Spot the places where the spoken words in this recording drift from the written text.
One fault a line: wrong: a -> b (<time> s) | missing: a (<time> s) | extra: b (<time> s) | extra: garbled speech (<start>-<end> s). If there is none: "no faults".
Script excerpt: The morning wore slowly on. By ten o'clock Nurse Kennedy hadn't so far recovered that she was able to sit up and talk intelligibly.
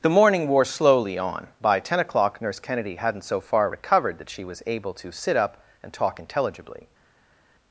no faults